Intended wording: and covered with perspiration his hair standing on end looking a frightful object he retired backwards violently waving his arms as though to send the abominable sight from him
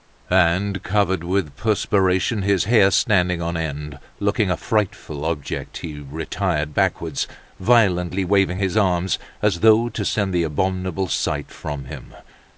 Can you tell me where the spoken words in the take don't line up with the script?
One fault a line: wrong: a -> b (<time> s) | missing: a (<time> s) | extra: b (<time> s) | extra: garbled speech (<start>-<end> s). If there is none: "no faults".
no faults